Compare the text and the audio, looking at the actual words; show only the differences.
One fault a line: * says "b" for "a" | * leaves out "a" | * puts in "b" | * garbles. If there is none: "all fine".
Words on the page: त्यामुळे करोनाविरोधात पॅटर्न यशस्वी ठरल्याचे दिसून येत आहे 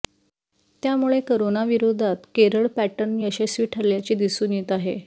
* puts in "केरळ"